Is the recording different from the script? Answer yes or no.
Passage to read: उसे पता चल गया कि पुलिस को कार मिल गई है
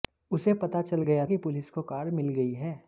no